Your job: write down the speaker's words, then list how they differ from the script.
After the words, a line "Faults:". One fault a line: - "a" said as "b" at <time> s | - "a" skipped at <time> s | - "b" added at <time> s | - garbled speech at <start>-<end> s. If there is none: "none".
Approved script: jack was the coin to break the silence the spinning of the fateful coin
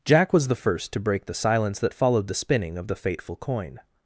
jack was the first to break the silence that followed the spinning of the fateful coin
Faults:
- "coin" said as "first" at 0.6 s
- "that followed" added at 1.8 s